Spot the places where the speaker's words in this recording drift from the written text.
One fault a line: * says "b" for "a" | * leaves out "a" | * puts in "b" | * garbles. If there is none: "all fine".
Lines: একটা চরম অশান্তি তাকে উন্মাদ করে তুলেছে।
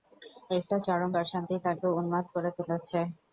all fine